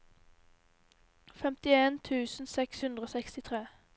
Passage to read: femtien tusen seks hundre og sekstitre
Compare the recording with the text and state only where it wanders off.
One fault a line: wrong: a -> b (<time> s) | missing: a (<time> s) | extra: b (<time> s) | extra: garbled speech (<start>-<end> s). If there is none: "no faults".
no faults